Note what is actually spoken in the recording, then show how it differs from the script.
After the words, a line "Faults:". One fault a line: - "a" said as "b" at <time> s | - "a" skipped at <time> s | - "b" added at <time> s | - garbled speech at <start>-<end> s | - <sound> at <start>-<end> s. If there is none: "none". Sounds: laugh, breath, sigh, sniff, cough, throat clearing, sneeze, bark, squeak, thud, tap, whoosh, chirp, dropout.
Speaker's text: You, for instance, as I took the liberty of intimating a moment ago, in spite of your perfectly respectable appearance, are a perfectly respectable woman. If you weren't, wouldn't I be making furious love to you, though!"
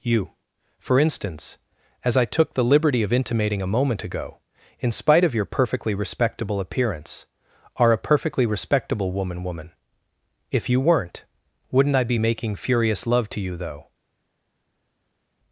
You, for instance, as I took the liberty of intimating a moment ago, in spite of your perfectly respectable appearance, are a perfectly respectable woman woman. If you weren't, wouldn't I be making furious love to you, though!"
Faults:
- "woman" added at 9.4 s